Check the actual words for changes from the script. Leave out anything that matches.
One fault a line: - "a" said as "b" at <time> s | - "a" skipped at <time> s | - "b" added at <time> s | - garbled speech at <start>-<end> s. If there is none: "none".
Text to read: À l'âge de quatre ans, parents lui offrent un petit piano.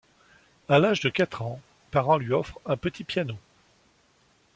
none